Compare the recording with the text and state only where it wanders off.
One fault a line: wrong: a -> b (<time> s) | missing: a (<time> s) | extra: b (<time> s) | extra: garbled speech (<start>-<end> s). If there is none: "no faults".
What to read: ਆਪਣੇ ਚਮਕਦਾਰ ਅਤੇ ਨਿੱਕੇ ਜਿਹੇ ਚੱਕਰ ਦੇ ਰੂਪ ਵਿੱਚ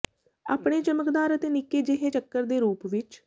no faults